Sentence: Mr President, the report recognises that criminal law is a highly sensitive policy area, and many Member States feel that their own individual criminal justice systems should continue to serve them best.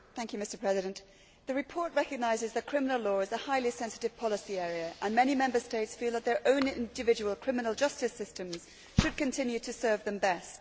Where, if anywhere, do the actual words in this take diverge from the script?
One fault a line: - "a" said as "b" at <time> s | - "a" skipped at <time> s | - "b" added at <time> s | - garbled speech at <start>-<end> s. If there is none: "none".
none